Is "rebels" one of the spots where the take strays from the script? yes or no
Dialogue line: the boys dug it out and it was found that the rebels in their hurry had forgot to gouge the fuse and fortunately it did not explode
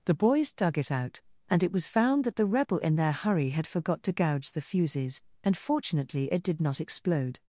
yes